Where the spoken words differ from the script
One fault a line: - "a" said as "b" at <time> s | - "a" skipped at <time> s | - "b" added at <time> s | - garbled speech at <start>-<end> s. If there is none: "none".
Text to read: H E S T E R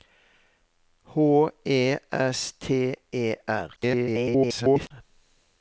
- garbled speech at 3.8-4.9 s